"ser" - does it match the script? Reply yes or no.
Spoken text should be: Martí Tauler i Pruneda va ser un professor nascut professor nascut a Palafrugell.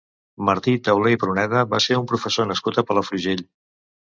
yes